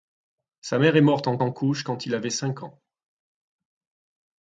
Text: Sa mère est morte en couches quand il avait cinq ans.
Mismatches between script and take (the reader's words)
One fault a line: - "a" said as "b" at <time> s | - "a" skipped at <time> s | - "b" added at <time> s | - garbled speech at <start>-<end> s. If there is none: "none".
- "en" added at 1.4 s